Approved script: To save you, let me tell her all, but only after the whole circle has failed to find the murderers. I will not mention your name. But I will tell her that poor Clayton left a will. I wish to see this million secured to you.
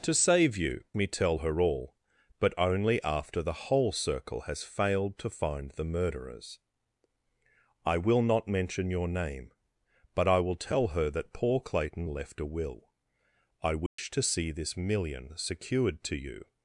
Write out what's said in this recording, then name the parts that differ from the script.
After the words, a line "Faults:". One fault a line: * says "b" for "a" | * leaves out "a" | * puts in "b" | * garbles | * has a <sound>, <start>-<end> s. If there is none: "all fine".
To save you, me tell her all, but only after the whole circle has failed to find the murderers. I will not mention your name. But I will tell her that poor Clayton left a will. I wish to see this million secured to you.
Faults:
* leaves out "let"
* has a dropout, 13.9-14.0 s